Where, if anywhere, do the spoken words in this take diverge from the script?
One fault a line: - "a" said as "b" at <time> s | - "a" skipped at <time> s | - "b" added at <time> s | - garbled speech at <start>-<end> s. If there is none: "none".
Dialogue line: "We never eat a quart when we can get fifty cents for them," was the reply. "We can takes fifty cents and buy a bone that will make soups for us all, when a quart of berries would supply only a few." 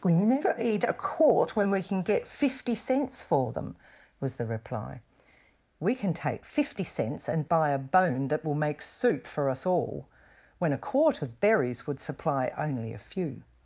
- "takes" said as "take" at 6.1 s
- "soups" said as "soup" at 8.8 s